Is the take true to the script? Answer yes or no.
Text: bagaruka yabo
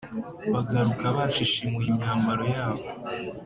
no